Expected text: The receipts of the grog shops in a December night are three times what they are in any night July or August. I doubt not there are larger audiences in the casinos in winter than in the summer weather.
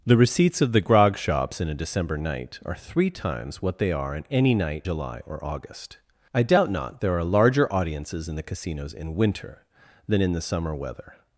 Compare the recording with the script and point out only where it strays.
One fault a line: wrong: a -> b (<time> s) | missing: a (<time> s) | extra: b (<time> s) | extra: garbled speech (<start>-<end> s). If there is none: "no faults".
no faults